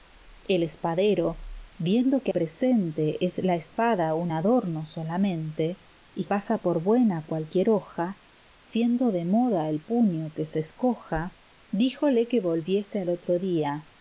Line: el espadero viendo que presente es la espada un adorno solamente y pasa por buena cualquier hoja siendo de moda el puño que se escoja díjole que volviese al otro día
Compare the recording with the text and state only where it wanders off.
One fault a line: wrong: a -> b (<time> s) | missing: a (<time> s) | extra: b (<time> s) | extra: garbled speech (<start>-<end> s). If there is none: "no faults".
no faults